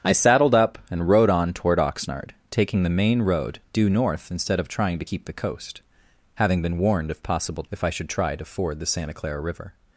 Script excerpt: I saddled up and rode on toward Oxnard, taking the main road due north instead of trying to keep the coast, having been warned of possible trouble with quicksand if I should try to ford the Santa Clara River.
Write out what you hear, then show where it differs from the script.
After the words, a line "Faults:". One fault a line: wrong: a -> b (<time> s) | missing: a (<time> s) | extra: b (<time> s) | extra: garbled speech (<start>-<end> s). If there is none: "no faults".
I saddled up and rode on toward Oxnard, taking the main road due north instead of trying to keep the coast, having been warned of possible if I should try to ford the Santa Clara River.
Faults:
missing: trouble with quicksand (7.6 s)